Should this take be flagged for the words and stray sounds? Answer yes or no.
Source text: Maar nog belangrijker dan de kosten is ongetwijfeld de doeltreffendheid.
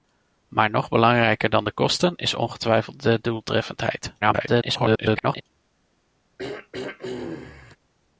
yes